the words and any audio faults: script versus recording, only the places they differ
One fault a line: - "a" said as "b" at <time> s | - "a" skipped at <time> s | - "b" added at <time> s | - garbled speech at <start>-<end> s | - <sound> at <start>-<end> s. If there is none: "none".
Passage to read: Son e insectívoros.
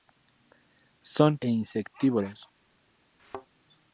- thud at 3.2-3.5 s